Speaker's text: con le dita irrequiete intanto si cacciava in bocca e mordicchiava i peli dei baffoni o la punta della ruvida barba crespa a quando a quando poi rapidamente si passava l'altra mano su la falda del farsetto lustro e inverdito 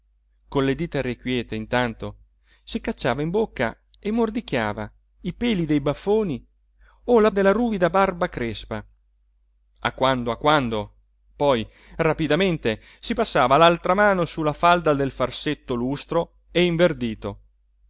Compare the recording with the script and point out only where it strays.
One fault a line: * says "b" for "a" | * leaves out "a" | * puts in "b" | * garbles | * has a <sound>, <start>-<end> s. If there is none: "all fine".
* leaves out "punta"